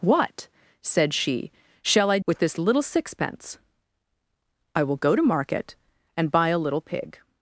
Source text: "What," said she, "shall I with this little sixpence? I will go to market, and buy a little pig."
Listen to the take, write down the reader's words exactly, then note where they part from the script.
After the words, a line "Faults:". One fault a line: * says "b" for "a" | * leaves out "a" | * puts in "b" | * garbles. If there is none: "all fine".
"What," said she, "shall I with this little sixpence? I will go to market, and buy a little pig."
Faults:
all fine